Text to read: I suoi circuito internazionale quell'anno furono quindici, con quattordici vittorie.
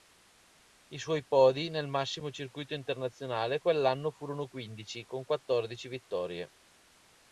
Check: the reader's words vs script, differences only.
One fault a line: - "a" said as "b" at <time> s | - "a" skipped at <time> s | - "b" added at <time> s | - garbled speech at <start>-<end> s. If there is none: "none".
- "podi nel massimo" added at 1.2 s